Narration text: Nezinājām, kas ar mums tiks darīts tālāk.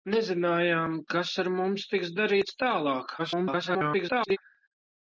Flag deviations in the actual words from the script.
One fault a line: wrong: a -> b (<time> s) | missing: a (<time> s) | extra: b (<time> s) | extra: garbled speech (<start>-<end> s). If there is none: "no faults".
extra: garbled speech (3.2-4.4 s)